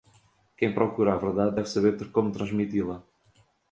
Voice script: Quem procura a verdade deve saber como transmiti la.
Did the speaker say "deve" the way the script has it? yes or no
yes